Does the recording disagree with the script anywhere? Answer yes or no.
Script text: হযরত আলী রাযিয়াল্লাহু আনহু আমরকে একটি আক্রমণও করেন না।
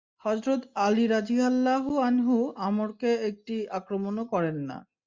no